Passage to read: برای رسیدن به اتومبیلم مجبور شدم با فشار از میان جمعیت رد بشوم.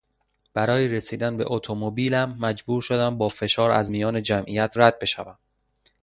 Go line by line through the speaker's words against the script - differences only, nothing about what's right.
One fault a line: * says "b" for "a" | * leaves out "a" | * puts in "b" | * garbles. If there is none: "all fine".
all fine